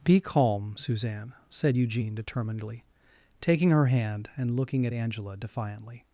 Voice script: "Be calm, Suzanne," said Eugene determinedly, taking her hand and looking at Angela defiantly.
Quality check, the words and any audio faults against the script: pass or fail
pass